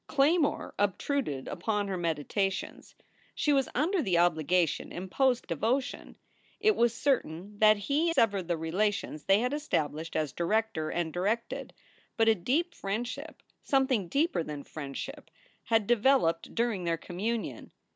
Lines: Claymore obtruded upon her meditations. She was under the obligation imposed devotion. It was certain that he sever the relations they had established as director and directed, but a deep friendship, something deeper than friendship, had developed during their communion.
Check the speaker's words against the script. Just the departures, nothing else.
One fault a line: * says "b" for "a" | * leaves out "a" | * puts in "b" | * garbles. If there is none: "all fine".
all fine